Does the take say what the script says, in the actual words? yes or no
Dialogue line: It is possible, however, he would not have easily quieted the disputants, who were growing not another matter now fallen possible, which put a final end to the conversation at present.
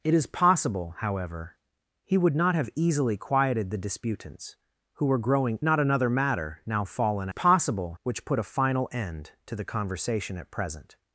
yes